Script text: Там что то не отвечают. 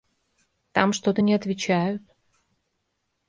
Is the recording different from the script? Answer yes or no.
no